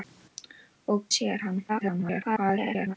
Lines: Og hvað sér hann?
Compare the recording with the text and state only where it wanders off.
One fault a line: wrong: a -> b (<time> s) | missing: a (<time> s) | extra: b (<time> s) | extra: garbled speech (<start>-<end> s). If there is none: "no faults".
missing: hvað (1.0 s)
extra: garbled speech (1.7-3.0 s)